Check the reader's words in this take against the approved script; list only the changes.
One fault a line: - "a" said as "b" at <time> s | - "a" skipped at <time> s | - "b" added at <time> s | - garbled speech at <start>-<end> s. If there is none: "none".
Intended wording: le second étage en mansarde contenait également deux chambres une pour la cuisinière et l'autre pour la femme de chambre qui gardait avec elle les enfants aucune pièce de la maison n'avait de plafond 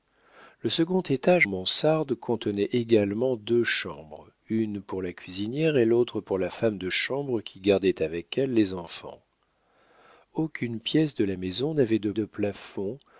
- "en" skipped at 1.5 s
- "de" added at 12.1 s